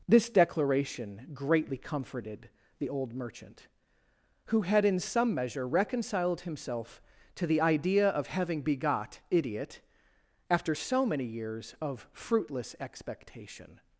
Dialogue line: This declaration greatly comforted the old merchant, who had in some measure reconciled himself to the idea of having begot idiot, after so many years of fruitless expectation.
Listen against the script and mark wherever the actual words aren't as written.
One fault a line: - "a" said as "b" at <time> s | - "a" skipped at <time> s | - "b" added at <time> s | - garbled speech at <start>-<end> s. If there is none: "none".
none